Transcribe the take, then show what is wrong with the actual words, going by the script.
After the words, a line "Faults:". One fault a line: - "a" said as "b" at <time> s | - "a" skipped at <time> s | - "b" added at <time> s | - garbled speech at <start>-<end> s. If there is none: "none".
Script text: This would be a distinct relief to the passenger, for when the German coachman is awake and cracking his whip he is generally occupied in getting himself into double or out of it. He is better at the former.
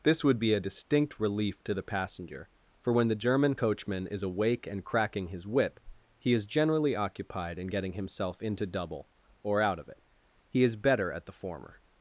This would be a distinct relief to the passenger, for when the German coachman is awake and cracking his whip he is generally occupied in getting himself into double or out of it. He is better at the former.
Faults:
none